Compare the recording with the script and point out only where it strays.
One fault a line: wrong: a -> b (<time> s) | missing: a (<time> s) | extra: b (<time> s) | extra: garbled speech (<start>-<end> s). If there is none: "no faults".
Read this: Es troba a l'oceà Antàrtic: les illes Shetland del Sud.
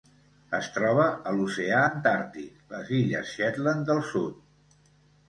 no faults